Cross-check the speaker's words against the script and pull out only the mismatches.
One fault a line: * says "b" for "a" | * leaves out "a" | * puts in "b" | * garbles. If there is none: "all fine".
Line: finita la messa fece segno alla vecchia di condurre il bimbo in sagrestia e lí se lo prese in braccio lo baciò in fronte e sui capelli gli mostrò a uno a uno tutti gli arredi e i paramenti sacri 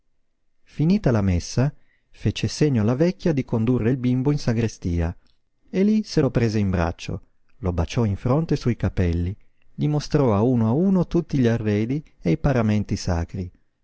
all fine